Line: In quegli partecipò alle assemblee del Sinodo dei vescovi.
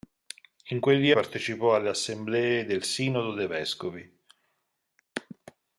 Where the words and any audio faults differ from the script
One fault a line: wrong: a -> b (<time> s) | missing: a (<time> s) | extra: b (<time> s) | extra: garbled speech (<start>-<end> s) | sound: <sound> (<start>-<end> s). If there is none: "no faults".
no faults